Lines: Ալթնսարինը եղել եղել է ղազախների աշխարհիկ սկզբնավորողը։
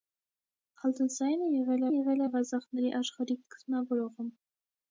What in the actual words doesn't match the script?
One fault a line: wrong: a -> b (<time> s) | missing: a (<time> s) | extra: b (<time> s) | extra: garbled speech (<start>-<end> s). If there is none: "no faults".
no faults